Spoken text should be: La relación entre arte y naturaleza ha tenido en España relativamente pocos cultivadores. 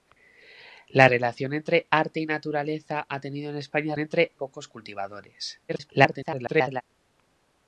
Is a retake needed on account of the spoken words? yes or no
yes